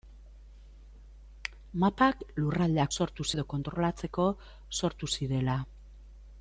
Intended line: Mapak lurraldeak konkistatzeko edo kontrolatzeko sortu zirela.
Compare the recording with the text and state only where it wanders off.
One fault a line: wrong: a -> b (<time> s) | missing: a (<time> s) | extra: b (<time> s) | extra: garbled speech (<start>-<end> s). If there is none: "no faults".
wrong: konkistatzeko -> sortu (3.0 s)